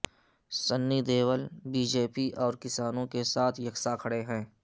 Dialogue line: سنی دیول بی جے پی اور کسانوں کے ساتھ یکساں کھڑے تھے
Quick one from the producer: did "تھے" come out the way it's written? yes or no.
no